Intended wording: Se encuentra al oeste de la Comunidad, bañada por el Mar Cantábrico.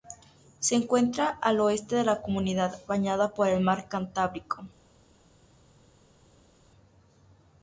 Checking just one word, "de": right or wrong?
right